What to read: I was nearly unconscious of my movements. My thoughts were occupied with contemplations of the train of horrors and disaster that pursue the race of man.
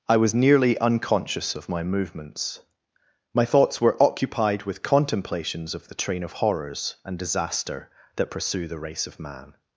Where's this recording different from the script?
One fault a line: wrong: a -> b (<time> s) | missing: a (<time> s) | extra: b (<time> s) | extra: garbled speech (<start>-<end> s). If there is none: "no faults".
no faults